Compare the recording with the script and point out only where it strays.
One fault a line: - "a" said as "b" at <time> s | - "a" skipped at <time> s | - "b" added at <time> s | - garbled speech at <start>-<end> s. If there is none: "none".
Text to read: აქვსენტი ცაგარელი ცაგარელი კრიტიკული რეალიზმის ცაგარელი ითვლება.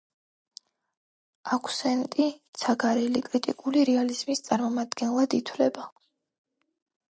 - "ცაგარელი" skipped at 3.2 s
- "ცაგარელი" said as "წარმომადგენლად" at 4.5 s